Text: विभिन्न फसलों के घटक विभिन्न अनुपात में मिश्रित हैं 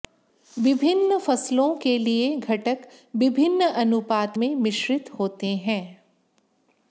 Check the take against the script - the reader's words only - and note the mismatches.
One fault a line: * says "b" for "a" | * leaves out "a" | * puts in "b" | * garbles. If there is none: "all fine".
* puts in "लिए"
* puts in "होते"